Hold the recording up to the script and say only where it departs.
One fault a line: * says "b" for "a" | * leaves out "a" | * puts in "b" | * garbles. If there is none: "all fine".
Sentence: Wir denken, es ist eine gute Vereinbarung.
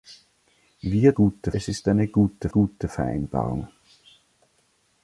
* says "gute" for "denken"
* puts in "gute"